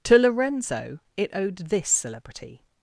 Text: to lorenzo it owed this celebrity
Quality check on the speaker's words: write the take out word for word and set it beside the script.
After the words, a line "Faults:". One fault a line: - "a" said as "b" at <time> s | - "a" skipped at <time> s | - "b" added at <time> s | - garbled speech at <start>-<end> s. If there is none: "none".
to lorenzo it owed this celebrity
Faults:
none